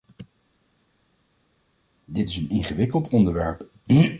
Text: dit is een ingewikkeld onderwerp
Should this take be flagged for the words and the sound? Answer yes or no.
no